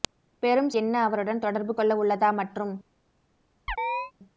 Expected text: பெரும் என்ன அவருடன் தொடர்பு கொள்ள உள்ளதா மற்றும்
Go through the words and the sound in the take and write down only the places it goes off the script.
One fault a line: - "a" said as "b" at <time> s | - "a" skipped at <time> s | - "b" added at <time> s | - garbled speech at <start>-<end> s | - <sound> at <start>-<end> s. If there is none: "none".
- chirp at 3.7-4.1 s